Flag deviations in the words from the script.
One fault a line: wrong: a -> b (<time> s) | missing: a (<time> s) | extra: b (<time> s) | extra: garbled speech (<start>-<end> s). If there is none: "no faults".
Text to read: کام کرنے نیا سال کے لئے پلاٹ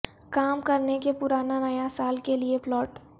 extra: کے پرانا (1.0 s)